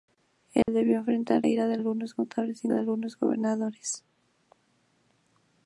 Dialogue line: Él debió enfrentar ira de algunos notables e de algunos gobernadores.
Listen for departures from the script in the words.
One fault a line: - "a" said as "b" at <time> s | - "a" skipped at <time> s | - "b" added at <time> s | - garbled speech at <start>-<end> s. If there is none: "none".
none